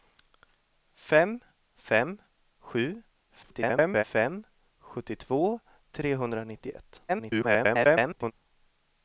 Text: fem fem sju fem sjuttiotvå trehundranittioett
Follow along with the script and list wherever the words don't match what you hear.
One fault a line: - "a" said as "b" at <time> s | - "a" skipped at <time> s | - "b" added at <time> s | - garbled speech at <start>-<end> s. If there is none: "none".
- garbled speech at 3.4-4.0 s
- garbled speech at 7.1-8.3 s